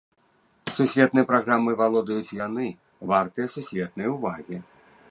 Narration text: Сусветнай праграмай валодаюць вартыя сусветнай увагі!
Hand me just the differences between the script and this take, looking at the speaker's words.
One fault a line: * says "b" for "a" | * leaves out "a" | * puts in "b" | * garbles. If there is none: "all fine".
* puts in "яны"